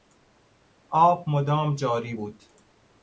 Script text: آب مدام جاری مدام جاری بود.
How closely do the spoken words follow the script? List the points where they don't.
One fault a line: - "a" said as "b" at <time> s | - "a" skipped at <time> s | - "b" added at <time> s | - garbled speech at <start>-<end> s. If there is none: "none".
- "مدام جاری" skipped at 2.1 s